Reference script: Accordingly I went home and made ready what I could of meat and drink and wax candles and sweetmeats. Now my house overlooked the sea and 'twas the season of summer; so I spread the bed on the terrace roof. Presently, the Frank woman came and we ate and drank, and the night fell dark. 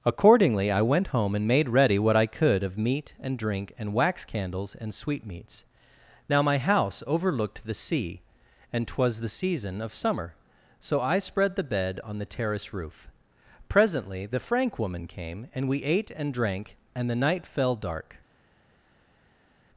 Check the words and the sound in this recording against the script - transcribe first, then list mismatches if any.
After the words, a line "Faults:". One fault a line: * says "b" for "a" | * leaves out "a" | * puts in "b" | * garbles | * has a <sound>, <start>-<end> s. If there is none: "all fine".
Accordingly I went home and made ready what I could of meat and drink and wax candles and sweetmeats. Now my house overlooked the sea and 'twas the season of summer; so I spread the bed on the terrace roof. Presently, the Frank woman came and we ate and drank, and the night fell dark.
Faults:
all fine